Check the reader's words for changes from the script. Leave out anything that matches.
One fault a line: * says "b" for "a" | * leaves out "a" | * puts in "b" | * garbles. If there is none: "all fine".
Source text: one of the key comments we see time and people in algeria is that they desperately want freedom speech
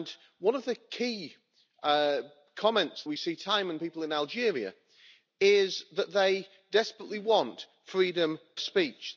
all fine